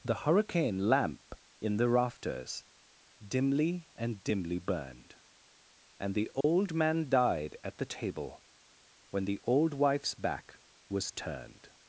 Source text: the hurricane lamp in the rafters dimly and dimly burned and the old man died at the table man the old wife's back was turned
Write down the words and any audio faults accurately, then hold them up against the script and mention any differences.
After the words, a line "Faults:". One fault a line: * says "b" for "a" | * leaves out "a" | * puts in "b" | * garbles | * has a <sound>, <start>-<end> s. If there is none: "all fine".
the hurricane lamp in the rafters dimly and dimly burned and the old man died at the table when the old wife's back was turned
Faults:
* has a dropout, 6.4-6.4 s
* says "when" for "man"